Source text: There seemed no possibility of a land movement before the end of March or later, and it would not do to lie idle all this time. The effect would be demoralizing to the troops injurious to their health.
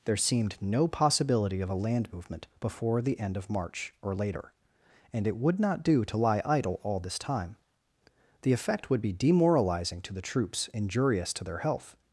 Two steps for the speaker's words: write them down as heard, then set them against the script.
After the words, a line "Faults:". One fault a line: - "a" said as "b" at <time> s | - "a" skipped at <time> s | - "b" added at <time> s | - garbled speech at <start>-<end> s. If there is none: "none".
There seemed no possibility of a land movement before the end of March or later, and it would not do to lie idle all this time. The effect would be demoralizing to the troops injurious to their health.
Faults:
none